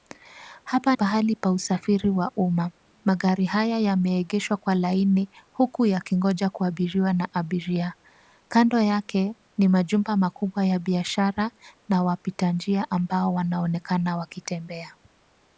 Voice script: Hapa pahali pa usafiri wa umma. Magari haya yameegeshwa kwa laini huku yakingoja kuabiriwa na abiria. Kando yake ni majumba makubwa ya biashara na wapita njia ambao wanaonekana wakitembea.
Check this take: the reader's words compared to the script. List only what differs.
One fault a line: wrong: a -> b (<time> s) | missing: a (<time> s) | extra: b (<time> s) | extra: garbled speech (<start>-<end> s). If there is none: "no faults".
no faults